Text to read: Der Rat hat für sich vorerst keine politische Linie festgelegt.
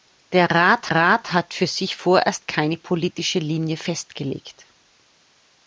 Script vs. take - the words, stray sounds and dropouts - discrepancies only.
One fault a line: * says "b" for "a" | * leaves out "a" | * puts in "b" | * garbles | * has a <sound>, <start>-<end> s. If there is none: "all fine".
* puts in "Rat"